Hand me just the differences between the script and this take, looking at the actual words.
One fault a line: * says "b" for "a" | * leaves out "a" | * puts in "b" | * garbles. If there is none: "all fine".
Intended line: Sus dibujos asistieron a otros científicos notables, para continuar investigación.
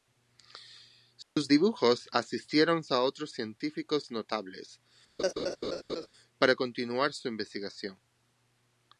* puts in "su"